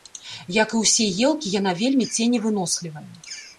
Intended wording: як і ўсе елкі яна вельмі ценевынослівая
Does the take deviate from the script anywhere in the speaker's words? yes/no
no